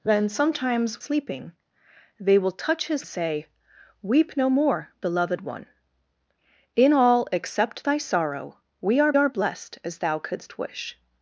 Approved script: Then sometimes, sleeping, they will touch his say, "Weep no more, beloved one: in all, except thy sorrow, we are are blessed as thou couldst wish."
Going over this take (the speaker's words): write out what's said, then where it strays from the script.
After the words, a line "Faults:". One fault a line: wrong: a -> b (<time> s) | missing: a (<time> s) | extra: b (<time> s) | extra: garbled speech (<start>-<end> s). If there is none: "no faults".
Then sometimes, sleeping, they will touch his say, "Weep no more, beloved one: in all, except thy sorrow, we are are blessed as thou couldst wish."
Faults:
no faults